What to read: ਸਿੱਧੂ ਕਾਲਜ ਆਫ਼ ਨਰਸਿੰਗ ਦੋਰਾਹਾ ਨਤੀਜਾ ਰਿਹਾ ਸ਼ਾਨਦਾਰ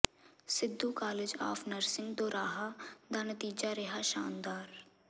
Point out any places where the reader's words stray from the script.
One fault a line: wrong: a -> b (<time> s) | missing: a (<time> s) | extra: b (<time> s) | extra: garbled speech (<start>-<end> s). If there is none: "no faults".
extra: ਦਾ (3.1 s)